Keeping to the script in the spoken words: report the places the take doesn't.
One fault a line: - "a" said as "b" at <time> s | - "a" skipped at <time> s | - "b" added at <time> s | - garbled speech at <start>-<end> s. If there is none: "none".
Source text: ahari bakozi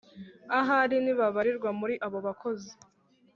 - "ntibabarirwa muri abo" added at 1.0 s